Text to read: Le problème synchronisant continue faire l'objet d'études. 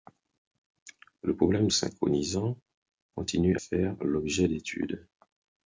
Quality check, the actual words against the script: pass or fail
pass